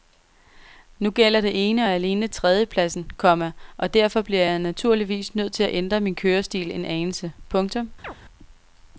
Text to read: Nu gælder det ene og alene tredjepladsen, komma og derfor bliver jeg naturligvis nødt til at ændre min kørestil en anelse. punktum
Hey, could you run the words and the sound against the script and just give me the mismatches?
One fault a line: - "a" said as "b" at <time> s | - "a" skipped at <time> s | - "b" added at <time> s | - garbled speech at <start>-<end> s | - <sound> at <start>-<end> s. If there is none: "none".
- chirp at 8.0-8.1 s